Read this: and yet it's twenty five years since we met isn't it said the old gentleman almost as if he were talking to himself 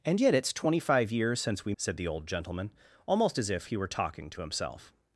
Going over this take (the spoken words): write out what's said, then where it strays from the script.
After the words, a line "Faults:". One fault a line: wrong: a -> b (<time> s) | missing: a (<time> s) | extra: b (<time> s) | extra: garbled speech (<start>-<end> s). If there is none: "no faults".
and yet it's twenty five years since we said the old gentleman almost as if he were talking to himself
Faults:
missing: met isn't it (1.7 s)